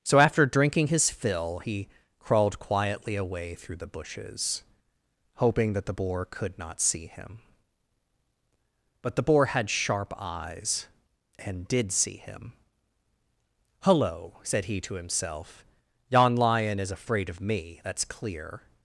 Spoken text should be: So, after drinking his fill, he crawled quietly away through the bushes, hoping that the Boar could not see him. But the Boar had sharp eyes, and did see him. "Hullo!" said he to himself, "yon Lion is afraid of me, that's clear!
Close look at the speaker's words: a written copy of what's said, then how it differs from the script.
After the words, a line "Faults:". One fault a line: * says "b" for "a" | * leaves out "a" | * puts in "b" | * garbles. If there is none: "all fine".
So, after drinking his fill, he crawled quietly away through the bushes, hoping that the Boar could not see him. But the Boar had sharp eyes, and did see him. "Hullo!" said he to himself, "yon Lion is afraid of me, that's clear!
Faults:
all fine